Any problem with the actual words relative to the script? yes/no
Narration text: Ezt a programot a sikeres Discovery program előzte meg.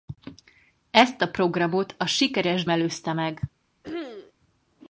yes